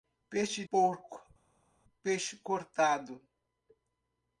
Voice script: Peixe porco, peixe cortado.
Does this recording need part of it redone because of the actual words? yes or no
no